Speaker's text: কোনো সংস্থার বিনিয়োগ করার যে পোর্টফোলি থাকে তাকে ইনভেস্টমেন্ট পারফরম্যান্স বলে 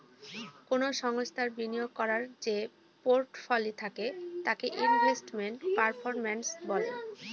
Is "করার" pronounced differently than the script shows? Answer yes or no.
no